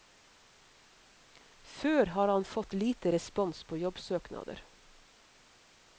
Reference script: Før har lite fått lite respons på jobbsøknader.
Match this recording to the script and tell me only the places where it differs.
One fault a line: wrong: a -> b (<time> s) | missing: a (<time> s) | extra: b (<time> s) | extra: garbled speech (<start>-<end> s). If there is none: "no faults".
wrong: lite -> han (2.3 s)